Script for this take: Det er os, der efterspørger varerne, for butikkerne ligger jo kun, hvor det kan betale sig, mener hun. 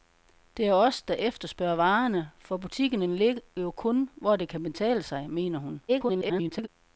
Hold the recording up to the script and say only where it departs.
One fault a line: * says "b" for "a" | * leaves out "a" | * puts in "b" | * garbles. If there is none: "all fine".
* garbles